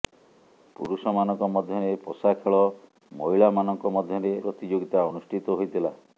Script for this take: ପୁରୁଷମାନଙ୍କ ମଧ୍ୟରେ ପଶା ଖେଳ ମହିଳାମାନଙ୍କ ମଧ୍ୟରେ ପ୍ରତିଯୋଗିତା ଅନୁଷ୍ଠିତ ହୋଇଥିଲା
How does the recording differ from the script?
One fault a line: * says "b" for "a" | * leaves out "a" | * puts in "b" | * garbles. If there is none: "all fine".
all fine